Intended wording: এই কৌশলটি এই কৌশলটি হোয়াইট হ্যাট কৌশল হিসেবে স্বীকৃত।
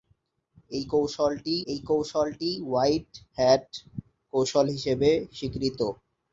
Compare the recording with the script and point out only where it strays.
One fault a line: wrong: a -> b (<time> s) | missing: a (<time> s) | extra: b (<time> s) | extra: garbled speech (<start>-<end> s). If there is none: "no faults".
no faults